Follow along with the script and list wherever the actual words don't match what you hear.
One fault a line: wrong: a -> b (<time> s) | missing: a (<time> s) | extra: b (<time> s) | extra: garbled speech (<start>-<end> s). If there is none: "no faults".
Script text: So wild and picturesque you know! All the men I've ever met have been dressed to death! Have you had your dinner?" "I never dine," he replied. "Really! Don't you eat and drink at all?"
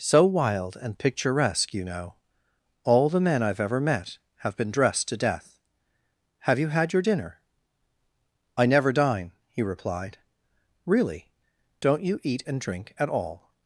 no faults